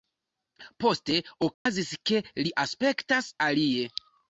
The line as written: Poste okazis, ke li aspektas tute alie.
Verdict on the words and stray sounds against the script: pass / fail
fail